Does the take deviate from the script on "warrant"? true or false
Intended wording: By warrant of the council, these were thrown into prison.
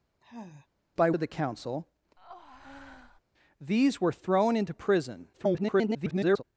true